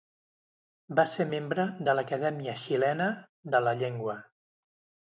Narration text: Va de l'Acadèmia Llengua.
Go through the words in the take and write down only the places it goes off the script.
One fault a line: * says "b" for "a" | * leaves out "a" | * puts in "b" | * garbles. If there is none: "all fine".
* puts in "ser membre"
* puts in "Xilena de la"